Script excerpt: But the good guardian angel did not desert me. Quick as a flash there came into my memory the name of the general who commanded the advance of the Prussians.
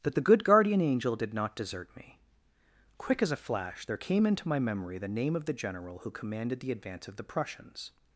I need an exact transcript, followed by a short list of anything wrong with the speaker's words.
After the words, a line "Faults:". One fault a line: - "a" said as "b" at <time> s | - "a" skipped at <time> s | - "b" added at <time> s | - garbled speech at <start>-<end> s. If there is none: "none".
That the good guardian angel did not desert me. Quick as a flash there came into my memory the name of the general who commanded the advance of the Prussians.
Faults:
- "But" said as "That" at 0.0 s